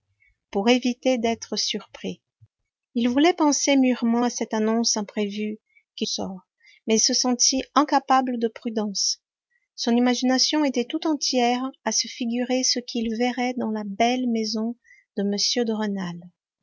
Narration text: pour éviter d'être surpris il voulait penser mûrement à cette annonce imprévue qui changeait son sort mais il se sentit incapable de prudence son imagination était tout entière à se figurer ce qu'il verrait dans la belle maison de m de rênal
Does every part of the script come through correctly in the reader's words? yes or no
no